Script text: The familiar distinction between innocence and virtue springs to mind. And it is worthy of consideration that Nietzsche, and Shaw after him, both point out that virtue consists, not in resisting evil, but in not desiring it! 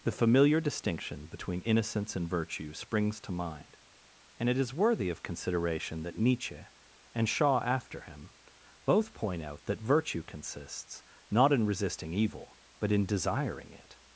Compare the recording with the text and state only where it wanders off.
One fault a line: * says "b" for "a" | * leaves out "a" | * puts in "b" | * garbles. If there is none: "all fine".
* leaves out "not"